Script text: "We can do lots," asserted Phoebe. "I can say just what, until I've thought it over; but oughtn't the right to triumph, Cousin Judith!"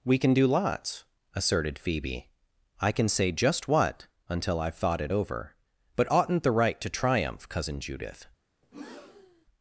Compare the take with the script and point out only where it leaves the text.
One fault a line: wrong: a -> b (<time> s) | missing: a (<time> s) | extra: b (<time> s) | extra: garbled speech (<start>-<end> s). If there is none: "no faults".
no faults